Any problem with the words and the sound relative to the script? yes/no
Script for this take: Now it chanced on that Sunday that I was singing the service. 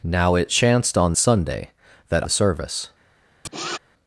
yes